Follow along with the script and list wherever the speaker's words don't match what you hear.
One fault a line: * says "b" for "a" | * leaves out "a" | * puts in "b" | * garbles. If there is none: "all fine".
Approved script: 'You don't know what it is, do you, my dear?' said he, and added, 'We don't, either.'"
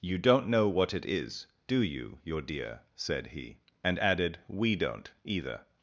* says "your" for "my"